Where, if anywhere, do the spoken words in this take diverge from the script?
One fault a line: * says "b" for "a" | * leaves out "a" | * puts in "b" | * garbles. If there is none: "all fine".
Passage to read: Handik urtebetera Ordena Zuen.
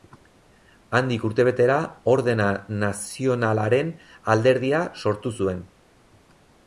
* puts in "Nazionalaren Alderdia sortu"